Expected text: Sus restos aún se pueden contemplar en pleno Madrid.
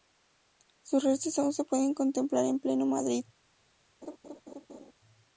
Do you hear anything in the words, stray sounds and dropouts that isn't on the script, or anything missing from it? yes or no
yes